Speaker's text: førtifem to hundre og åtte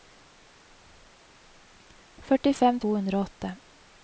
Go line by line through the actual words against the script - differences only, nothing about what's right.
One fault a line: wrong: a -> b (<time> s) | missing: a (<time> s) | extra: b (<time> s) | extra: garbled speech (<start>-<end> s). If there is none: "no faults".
no faults